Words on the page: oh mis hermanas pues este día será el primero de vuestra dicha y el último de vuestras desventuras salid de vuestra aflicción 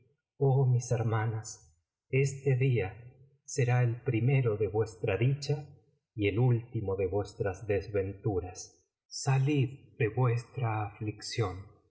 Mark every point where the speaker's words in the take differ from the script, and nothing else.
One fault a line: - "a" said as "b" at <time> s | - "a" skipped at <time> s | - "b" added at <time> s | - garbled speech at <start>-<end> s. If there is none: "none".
- "pues" skipped at 1.9 s